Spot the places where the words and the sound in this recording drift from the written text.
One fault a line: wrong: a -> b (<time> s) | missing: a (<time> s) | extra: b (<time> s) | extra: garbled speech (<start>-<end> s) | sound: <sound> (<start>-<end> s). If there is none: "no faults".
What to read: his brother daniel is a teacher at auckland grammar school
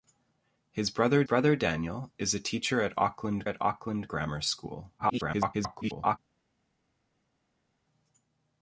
extra: brother (1.2 s)
extra: at auckland (3.4 s)
extra: garbled speech (5.0-6.2 s)